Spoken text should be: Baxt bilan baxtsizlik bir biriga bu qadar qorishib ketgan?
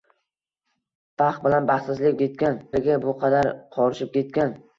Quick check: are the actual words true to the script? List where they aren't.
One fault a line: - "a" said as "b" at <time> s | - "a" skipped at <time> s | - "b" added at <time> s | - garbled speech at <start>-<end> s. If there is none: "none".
- "bir" said as "ketgan" at 2.2 s